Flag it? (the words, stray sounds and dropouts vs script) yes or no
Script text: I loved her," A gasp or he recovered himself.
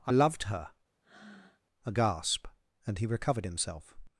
yes